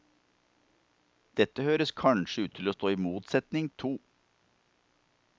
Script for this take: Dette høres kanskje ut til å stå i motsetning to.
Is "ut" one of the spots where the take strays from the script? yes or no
no